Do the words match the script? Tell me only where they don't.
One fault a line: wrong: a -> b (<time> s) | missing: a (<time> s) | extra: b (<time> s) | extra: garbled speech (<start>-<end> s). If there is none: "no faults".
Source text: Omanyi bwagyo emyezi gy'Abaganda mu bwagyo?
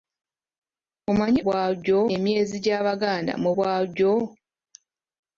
no faults